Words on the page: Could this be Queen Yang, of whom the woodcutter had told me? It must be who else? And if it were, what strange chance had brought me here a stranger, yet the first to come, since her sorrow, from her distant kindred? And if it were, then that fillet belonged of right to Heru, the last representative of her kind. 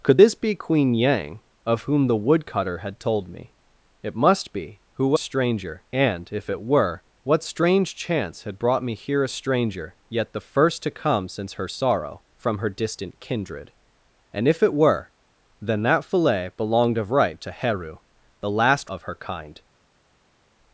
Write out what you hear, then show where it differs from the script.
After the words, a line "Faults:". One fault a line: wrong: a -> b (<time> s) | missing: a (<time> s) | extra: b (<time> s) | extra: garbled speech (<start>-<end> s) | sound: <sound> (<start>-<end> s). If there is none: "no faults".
Could this be Queen Yang, of whom the woodcutter had told me? It must be who stranger? And if it were, what strange chance had brought me here a stranger, yet the first to come, since her sorrow, from her distant kindred? And if it were, then that fillet belonged of right to Heru, the last of her kind.
Faults:
wrong: else -> stranger (5.2 s)
missing: representative (18.9 s)